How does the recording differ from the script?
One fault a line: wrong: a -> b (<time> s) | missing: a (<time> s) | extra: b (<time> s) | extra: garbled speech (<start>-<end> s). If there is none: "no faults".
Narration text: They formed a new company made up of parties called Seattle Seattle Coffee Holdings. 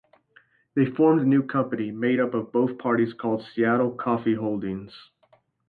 extra: both (2.5 s)
missing: Seattle (3.9 s)